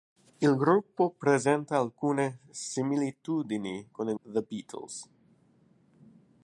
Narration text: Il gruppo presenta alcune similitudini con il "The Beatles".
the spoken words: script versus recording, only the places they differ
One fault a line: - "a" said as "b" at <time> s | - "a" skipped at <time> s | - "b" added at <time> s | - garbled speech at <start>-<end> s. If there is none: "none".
none